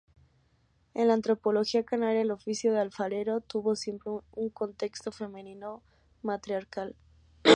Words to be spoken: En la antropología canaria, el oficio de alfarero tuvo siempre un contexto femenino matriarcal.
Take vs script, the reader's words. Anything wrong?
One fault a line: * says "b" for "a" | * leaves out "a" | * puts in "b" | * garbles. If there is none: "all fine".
all fine